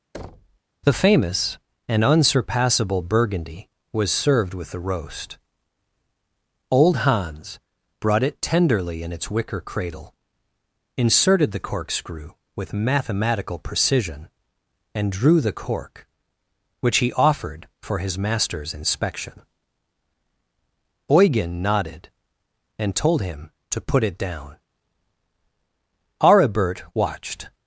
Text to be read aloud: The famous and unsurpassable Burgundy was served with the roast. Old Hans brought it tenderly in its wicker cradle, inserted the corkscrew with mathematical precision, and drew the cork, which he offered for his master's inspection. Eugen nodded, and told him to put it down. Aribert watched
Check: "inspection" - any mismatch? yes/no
no